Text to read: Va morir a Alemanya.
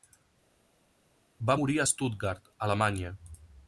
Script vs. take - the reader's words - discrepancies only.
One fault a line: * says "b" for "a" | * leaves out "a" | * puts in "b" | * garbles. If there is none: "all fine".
* puts in "Stuttgart"